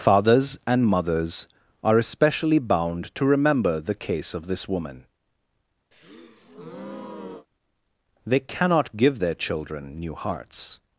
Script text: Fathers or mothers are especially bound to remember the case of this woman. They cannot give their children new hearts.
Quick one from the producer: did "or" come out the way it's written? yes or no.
no